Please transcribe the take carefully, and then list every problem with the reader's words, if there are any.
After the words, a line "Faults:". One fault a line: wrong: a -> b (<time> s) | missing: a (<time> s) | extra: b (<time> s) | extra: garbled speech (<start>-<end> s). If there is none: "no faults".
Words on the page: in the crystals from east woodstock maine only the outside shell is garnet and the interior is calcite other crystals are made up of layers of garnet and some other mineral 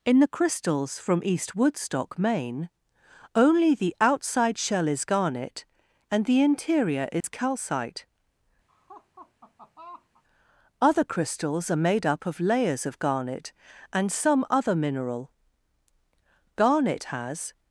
in the crystals from east woodstock maine only the outside shell is garnet and the interior is calcite other crystals are made up of layers of garnet and some other mineral garnet has
Faults:
extra: garnet has (16.6 s)